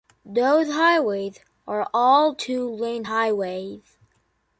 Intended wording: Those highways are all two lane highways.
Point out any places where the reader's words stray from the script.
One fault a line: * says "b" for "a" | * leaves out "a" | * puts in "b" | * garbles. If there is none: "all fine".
all fine